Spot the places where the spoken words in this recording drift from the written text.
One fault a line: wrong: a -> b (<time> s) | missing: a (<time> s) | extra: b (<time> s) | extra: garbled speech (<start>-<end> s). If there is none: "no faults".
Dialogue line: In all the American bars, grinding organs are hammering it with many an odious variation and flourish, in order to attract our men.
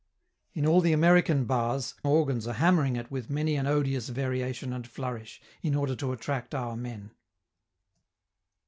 missing: grinding (1.9 s)